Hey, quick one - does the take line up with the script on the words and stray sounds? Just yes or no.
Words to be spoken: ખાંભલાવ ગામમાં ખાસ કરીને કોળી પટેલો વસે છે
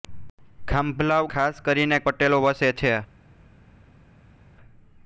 no